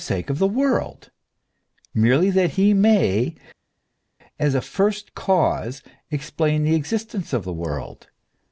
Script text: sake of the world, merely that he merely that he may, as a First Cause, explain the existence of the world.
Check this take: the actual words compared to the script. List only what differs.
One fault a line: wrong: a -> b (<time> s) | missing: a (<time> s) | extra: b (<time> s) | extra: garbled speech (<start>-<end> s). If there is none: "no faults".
missing: merely that he (2.7 s)